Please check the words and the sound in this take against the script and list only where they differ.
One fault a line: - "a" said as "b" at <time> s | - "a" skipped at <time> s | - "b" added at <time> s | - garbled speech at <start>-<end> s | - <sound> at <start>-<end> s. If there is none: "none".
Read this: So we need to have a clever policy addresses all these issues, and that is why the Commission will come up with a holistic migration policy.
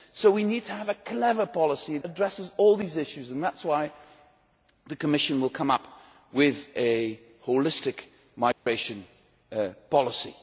- dropout at 8.5-8.7 s